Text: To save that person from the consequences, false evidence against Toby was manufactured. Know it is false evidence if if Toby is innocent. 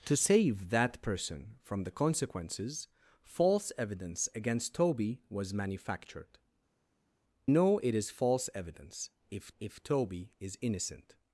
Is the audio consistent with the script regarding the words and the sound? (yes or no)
yes